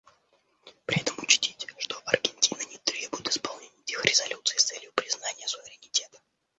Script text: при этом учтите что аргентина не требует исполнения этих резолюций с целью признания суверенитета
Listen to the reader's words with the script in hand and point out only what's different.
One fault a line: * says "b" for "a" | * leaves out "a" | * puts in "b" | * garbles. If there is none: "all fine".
all fine